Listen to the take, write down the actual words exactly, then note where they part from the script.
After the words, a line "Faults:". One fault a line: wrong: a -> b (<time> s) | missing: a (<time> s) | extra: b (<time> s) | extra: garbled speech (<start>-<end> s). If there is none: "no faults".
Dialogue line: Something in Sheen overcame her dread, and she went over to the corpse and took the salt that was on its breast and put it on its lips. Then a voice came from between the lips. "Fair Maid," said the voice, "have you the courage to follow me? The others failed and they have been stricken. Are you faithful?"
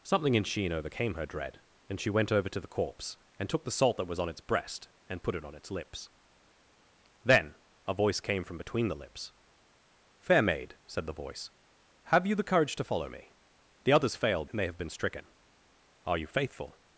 Something in Sheen overcame her dread, and she went over to the corpse and took the salt that was on its breast and put it on its lips. Then a voice came from between the lips. "Fair Maid," said the voice, "have you the courage to follow me? The others failed and they have been stricken. Are you faithful?"
Faults:
no faults